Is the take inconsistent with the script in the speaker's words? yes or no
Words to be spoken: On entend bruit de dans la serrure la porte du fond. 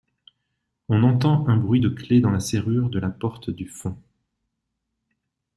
yes